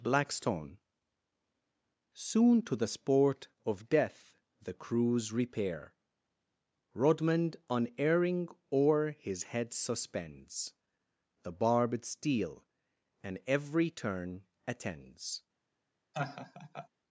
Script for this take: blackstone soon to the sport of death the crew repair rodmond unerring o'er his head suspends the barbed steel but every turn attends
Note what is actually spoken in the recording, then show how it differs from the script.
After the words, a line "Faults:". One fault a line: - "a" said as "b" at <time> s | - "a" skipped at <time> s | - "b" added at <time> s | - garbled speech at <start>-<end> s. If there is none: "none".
blackstone soon to the sport of death the crews repair rodmond unerring o'er his head suspends the barbed steel and every turn attends
Faults:
- "crew" said as "crews" at 4.7 s
- "but" said as "and" at 13.2 s